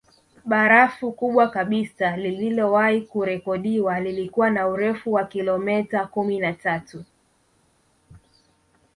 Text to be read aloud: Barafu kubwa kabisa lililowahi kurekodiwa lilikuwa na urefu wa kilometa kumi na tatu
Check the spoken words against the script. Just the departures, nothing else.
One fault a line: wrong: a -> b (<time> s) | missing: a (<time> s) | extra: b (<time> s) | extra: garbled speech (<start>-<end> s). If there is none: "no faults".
no faults